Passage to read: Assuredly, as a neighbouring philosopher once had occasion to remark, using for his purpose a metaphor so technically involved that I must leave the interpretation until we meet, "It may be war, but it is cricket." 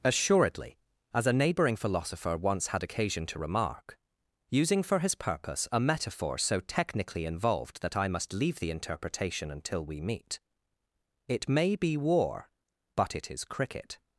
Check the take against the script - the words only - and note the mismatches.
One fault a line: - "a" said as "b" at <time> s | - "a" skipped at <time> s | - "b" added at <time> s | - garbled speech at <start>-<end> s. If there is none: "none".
none